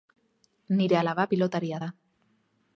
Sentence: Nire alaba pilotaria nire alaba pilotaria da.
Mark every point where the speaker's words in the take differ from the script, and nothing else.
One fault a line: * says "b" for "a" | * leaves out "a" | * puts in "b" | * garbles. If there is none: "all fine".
* leaves out "nire alaba pilotaria"